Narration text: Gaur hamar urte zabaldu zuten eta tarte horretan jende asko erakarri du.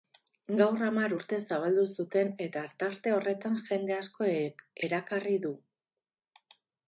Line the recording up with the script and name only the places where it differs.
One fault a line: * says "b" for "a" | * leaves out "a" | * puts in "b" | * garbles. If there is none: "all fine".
all fine